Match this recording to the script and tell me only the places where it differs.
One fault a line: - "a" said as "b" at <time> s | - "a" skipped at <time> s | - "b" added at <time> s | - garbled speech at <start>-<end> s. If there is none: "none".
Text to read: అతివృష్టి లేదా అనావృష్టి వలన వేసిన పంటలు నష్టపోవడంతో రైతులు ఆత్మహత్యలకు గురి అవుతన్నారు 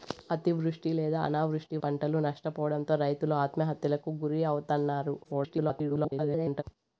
- "వలన వేసిన" skipped at 1.8 s
- garbled speech at 5.2-6.6 s